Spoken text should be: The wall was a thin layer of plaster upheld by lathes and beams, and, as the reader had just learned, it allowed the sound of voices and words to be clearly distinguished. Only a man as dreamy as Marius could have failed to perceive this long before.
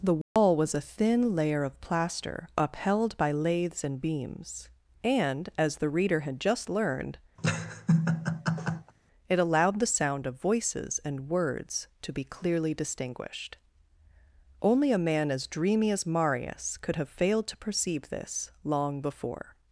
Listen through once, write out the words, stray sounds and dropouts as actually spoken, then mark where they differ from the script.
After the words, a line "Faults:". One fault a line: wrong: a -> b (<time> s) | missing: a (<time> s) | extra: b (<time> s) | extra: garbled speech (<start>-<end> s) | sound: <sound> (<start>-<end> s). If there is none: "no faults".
The wall was a thin layer of plaster upheld by lathes and beams, and, as the reader had just learned, it allowed the sound of voices and words to be clearly distinguished. Only a man as dreamy as Marius could have failed to perceive this long before.
Faults:
sound: dropout (0.2-0.4 s)
sound: laugh (7.4-8.9 s)